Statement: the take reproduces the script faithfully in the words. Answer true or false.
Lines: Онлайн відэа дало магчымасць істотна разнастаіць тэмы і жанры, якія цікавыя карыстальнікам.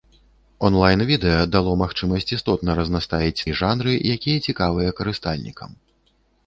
false